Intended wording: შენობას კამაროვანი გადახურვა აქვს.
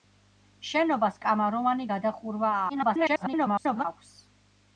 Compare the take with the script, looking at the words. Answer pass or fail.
fail